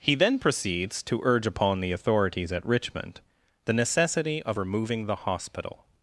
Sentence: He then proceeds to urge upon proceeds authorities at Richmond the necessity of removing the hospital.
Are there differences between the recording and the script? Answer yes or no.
yes